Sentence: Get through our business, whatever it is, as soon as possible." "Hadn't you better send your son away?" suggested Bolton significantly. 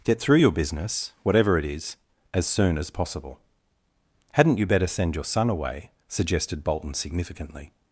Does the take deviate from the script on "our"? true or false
true